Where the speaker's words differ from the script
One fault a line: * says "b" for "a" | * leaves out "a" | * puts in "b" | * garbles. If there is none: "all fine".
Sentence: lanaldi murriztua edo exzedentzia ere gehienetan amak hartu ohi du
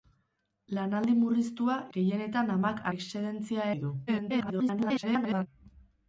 * leaves out "edo exzedentzia ere"
* says "exzedentzia" for "hartu"
* garbles